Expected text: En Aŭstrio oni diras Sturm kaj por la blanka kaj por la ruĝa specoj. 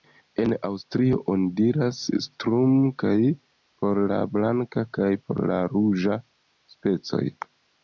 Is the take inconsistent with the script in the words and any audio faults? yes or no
no